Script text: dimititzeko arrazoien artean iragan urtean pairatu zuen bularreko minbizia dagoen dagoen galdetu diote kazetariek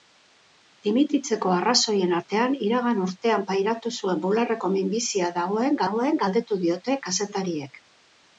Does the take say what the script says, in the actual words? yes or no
yes